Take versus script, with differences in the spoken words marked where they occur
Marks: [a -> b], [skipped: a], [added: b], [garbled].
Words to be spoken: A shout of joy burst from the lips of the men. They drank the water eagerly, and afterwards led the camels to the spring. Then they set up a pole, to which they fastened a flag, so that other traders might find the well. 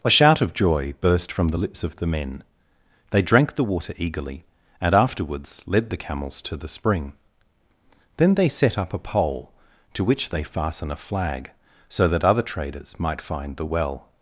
A shout of joy burst from the lips of the men. They drank the water eagerly, and afterwards led the camels to the spring. Then they set up a pole, to which they [fastened -> fasten] a flag, so that other traders might find the well.